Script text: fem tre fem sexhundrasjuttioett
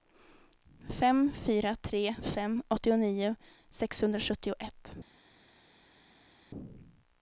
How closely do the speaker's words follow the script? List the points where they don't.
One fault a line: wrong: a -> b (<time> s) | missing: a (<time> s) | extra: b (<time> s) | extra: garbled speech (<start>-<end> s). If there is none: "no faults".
extra: fyra (1.4 s)
extra: åttionio (2.7 s)